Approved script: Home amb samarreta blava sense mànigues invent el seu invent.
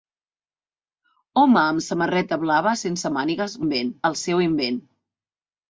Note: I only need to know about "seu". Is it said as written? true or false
true